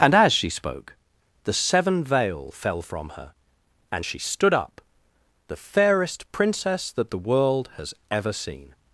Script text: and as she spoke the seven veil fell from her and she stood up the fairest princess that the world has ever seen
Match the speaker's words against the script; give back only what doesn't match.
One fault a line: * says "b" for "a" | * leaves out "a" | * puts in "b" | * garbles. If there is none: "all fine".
all fine